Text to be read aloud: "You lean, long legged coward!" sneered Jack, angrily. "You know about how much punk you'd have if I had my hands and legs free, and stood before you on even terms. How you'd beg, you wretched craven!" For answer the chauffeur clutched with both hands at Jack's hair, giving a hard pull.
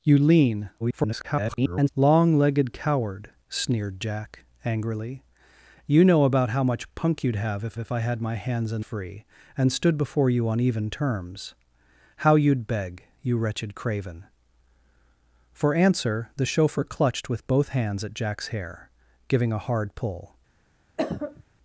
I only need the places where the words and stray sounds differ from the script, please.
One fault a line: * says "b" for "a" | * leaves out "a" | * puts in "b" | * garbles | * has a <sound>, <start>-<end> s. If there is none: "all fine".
* garbles
* puts in "if"
* leaves out "legs"
* has a cough, 21.0-21.4 s